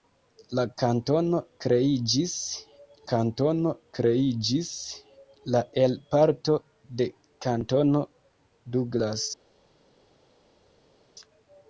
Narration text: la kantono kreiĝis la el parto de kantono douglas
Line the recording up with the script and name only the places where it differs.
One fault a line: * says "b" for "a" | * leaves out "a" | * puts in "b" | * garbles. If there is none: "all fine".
* puts in "kantono kreiĝis"